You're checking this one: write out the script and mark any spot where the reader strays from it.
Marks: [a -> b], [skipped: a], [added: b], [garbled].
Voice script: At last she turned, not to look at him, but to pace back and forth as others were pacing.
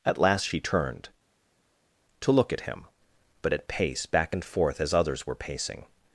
At last she turned, [skipped: not] to look at him, but [to -> at] pace back and forth as others were pacing.